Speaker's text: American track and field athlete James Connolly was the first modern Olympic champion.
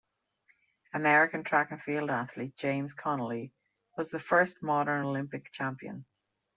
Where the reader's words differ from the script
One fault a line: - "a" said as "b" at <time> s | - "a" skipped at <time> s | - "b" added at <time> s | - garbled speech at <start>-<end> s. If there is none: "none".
none